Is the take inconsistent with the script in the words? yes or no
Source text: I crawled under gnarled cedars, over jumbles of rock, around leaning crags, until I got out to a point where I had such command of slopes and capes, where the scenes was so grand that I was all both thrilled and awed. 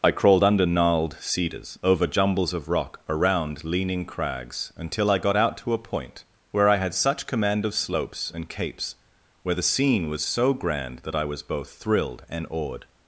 yes